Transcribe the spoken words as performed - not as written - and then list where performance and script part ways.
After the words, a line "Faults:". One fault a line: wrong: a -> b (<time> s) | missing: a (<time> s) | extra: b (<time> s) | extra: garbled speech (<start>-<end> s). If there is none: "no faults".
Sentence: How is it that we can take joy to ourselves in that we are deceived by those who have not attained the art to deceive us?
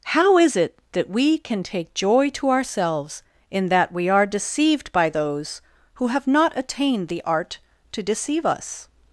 How is it that we can take joy to ourselves in that we are deceived by those who have not attained the art to deceive us?
Faults:
no faults